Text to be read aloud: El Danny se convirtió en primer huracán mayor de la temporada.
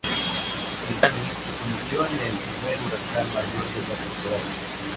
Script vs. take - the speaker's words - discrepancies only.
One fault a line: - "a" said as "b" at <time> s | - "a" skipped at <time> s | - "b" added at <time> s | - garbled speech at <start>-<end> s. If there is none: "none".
- "el" added at 2.2 s